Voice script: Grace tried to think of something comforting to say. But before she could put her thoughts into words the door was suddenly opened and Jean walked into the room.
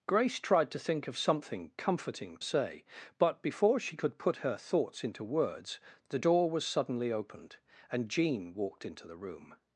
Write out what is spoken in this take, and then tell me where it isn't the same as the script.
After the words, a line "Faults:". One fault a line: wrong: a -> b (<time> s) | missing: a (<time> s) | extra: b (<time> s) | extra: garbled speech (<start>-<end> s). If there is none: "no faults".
Grace tried to think of something comforting say. But before she could put her thoughts into words the door was suddenly opened and Jean walked into the room.
Faults:
missing: to (2.4 s)